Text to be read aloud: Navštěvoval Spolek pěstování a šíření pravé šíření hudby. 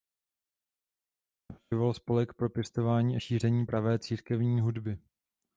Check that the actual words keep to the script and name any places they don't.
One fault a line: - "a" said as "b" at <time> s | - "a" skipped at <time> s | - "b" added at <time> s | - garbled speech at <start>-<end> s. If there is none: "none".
- "pro" added at 2.3 s
- "šíření" said as "církevní" at 4.0 s